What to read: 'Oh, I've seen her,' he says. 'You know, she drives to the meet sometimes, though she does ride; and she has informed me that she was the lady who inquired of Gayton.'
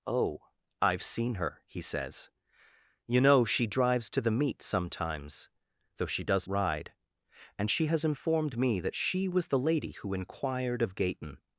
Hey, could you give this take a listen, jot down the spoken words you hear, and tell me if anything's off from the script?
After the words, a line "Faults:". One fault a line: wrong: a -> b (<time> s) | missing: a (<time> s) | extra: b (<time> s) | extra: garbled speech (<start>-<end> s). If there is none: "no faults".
'Oh, I've seen her,' he says. 'You know, she drives to the meet sometimes, though she does ride; and she has informed me that she was the lady who inquired of Gayton.'
Faults:
no faults